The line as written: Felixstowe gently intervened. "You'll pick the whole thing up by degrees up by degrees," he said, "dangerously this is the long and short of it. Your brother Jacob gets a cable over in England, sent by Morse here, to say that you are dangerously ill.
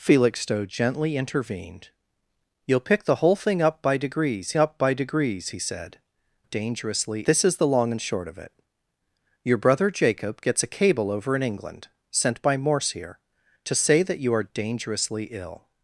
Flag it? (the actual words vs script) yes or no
no